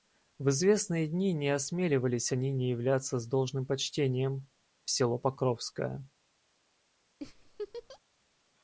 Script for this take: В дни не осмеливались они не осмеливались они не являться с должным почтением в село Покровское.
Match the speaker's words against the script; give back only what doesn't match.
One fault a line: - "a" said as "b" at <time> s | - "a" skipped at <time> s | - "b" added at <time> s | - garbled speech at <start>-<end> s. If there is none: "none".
- "известные" added at 0.5 s
- "осмеливались они не" skipped at 2.7 s